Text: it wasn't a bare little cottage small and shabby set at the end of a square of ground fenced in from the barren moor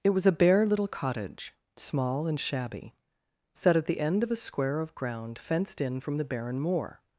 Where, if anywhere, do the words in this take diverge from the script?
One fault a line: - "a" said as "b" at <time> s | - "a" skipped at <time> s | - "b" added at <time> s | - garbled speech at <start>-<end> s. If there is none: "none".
- "wasn't" said as "was" at 0.1 s